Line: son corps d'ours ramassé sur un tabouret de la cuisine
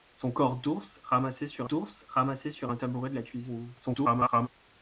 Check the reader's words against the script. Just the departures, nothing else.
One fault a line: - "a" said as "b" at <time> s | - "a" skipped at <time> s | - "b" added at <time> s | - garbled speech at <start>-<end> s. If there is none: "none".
- "d'ours ramassé sur" added at 1.6 s
- garbled speech at 3.8-4.5 s